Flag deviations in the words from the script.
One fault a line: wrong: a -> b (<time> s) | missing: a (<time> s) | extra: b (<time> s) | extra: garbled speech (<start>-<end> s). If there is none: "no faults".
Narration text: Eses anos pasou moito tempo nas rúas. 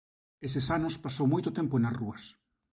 no faults